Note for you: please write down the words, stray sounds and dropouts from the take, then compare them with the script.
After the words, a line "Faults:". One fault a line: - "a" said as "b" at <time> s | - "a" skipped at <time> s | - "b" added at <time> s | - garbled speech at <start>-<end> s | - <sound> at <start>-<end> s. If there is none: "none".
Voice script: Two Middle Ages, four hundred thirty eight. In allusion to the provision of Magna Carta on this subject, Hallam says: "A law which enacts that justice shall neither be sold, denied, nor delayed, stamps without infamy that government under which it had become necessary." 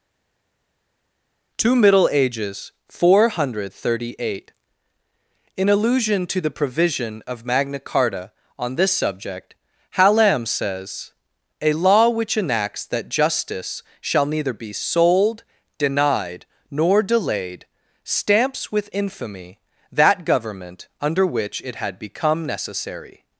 Two Middle Ages, four hundred thirty eight. In allusion to the provision of Magna Carta on this subject, Hallam says: "A law which enacts that justice shall neither be sold, denied, nor delayed, stamps with infamy that government under which it had become necessary."
Faults:
- "without" said as "with" at 18.7 s